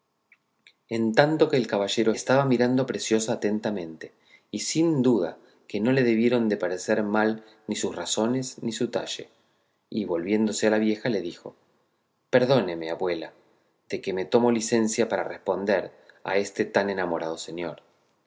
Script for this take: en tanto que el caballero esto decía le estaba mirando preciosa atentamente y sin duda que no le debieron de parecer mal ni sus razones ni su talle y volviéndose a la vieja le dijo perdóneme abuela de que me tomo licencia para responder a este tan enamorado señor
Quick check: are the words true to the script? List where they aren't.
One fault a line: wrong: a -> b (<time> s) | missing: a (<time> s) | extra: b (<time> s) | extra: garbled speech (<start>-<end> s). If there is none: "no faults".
missing: esto decía le (2.1 s)